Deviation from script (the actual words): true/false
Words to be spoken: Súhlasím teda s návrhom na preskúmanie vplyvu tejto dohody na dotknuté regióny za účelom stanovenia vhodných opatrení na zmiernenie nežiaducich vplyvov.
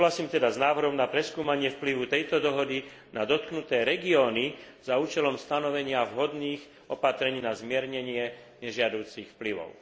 false